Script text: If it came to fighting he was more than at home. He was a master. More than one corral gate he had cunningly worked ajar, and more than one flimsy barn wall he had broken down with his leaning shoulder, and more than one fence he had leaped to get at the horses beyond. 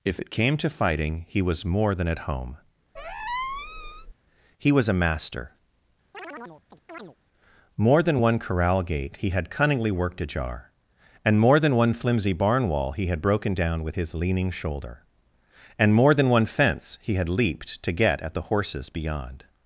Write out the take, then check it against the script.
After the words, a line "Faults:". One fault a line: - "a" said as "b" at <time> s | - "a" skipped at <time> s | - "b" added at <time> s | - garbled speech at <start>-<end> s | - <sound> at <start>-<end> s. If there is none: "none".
If it came to fighting he was more than at home. He was a master. More than one corral gate he had cunningly worked ajar, and more than one flimsy barn wall he had broken down with his leaning shoulder, and more than one fence he had leaped to get at the horses beyond.
Faults:
- squeak at 3.0-4.1 s
- chirp at 6.1-7.2 s